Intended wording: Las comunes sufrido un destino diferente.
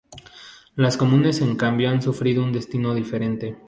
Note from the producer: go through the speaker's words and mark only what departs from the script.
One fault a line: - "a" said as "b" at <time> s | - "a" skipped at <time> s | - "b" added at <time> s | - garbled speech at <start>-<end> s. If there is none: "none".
- "en cambio han" added at 1.4 s